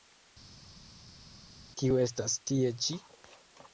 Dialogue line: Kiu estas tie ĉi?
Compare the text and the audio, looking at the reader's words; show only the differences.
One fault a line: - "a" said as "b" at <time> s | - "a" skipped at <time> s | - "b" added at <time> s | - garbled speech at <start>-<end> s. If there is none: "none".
none